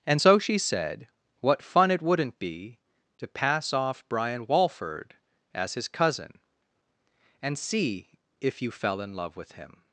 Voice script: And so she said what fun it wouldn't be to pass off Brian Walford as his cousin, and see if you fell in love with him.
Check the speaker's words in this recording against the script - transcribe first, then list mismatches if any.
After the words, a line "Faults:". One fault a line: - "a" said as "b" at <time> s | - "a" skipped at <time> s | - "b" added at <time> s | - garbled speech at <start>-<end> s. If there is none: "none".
And so she said what fun it wouldn't be to pass off Brian Walford as his cousin, and see if you fell in love with him.
Faults:
none